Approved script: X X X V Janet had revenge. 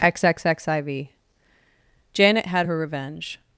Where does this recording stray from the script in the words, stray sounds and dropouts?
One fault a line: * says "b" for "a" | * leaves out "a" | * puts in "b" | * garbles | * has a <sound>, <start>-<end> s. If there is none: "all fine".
* puts in "I"
* puts in "her"